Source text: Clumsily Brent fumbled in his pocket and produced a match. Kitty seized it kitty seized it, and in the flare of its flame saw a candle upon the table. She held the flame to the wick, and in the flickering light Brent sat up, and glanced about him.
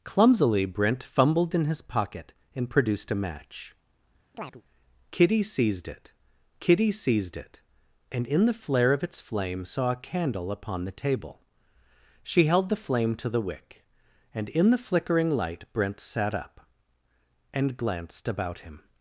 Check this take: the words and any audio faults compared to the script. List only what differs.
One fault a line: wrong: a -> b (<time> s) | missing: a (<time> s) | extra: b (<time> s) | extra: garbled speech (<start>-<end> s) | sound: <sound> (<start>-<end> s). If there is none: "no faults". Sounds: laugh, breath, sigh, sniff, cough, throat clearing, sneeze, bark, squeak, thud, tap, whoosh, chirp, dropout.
sound: chirp (4.3-4.6 s)